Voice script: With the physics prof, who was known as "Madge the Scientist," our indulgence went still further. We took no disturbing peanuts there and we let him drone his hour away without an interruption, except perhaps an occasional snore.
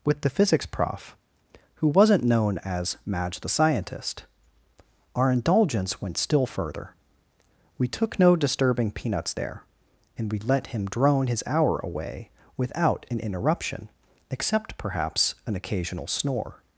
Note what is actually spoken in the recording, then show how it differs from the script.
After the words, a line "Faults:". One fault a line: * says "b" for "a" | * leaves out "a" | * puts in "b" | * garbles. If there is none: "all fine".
With the physics prof, who wasn't known as "Madge the Scientist," our indulgence went still further. We took no disturbing peanuts there and we let him drone his hour away without an interruption, except perhaps an occasional snore.
Faults:
* says "wasn't" for "was"